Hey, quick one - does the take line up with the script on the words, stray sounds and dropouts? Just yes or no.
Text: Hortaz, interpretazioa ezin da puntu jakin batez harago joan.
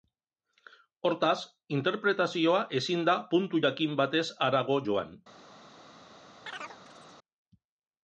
no